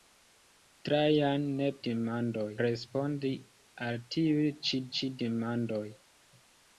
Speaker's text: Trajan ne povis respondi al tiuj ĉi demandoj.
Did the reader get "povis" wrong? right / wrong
wrong